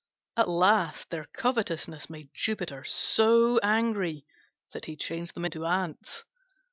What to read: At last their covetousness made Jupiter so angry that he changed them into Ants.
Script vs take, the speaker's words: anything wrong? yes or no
no